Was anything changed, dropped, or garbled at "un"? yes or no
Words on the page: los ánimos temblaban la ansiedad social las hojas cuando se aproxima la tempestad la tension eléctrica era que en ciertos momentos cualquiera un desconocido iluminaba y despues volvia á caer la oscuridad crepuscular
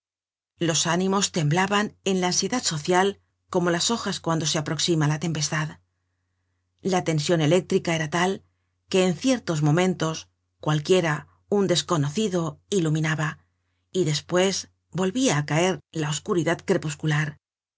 no